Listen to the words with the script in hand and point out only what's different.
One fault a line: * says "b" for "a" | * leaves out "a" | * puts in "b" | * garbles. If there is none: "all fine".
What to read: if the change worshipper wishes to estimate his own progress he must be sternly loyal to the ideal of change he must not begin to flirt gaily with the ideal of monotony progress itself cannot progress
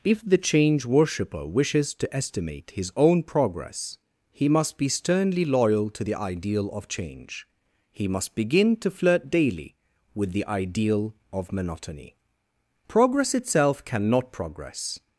* leaves out "not"
* says "daily" for "gaily"